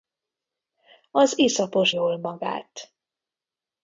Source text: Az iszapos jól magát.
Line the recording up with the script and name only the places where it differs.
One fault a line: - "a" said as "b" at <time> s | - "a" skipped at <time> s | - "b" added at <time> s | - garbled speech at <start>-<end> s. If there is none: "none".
none